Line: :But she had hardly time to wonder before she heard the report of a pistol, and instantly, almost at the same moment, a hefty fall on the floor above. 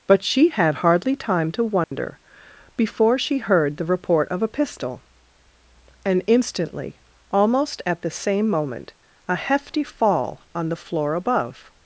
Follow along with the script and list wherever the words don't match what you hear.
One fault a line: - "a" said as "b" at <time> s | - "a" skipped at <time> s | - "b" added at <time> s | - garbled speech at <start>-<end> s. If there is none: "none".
none